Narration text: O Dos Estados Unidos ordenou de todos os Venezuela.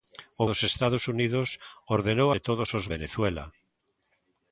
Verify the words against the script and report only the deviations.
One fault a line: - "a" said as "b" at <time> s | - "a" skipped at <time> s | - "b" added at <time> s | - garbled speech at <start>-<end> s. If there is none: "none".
none